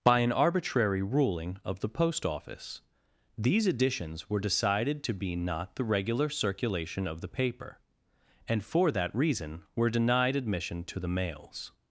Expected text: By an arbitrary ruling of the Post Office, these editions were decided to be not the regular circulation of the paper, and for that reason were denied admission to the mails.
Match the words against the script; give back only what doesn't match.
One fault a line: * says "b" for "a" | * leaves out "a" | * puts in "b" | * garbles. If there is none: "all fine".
all fine